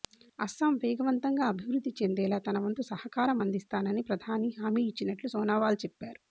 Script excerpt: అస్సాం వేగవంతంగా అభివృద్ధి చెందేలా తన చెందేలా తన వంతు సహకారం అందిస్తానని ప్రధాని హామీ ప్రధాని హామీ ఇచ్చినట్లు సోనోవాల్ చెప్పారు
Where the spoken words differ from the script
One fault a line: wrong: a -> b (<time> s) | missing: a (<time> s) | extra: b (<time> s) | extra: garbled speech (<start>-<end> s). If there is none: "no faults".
missing: చెందేలా తన (2.6 s)
missing: ప్రధాని హామీ (4.8 s)